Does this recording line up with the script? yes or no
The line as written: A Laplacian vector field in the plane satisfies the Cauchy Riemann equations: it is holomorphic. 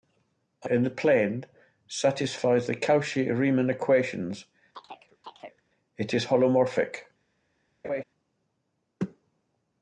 no